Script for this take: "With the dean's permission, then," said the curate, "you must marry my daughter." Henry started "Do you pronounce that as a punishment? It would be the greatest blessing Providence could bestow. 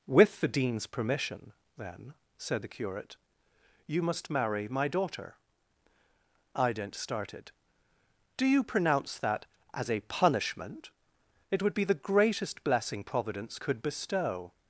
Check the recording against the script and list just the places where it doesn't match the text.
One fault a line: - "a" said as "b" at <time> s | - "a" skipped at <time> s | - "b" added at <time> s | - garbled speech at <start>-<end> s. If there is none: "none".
- "Henry" said as "Ident" at 6.5 s